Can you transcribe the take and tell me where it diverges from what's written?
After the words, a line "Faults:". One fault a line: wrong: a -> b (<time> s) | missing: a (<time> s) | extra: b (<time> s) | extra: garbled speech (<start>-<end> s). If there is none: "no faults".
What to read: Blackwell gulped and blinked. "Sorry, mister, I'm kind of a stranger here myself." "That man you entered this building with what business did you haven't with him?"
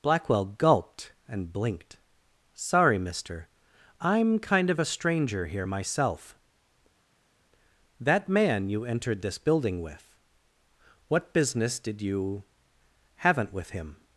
Blackwell gulped and blinked. "Sorry, mister, I'm kind of a stranger here myself." "That man you entered this building with what business did you haven't with him?"
Faults:
no faults